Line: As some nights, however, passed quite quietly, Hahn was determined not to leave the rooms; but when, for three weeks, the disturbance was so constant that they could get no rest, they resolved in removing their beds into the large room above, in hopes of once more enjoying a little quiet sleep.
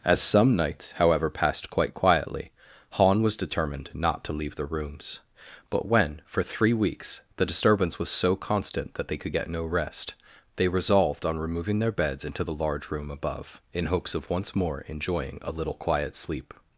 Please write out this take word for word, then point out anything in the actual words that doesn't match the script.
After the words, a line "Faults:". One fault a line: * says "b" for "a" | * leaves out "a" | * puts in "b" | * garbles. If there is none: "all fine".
As some nights, however, passed quite quietly, Hahn was determined not to leave the rooms; but when, for three weeks, the disturbance was so constant that they could get no rest, they resolved on removing their beds into the large room above, in hopes of once more enjoying a little quiet sleep.
Faults:
* says "on" for "in"